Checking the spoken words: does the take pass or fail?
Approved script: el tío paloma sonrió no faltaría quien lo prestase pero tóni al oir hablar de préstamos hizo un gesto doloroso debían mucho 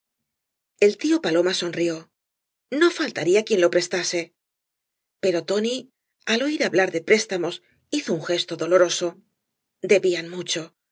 pass